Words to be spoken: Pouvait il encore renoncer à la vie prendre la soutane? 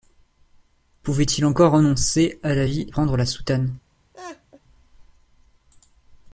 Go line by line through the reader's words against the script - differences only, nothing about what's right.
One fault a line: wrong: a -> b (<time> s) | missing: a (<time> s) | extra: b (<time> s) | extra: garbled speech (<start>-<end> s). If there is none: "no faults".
no faults